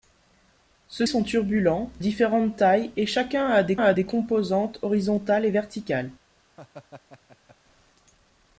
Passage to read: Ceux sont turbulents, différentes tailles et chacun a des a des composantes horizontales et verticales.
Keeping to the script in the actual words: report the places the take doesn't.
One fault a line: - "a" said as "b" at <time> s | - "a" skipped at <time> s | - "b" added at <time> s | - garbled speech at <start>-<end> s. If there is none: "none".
none